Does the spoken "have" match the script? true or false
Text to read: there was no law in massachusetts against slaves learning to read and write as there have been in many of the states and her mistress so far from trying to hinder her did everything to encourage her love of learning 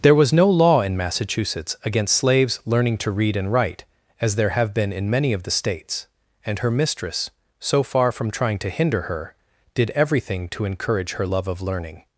true